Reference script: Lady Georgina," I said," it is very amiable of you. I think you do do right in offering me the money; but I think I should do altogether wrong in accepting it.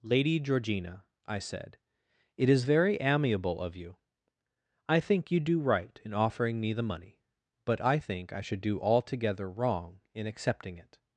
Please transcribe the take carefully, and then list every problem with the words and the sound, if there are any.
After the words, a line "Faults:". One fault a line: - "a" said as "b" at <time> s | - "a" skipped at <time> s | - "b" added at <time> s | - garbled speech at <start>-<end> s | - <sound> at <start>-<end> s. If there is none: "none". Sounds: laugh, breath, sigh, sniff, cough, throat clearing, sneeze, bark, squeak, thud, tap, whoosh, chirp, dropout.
Lady Georgina," I said," it is very amiable of you. I think you do right in offering me the money; but I think I should do altogether wrong in accepting it.
Faults:
- "do" skipped at 5.6 s